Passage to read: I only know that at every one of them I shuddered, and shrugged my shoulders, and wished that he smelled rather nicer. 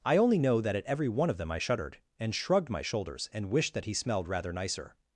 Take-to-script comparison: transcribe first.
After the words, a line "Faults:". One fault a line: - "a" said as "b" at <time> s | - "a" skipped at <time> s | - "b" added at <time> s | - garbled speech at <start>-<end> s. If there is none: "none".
I only know that at every one of them I shuddered, and shrugged my shoulders, and wished that he smelled rather nicer.
Faults:
none